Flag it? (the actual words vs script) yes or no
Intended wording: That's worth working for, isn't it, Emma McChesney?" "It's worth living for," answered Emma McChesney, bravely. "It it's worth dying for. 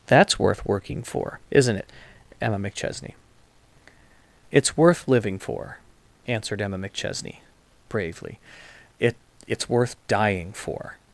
no